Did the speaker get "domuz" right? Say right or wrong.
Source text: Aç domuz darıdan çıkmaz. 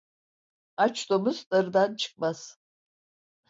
right